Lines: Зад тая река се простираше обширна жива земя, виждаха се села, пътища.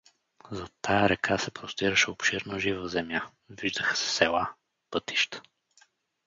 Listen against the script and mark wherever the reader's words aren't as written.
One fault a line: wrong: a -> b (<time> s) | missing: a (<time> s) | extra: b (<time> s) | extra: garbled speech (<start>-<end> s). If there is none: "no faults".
no faults